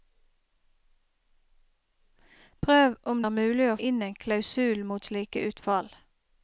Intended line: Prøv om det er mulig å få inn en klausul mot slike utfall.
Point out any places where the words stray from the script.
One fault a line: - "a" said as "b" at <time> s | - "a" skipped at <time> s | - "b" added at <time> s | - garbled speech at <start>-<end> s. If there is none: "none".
- "det" skipped at 3.2 s
- "få" skipped at 3.8 s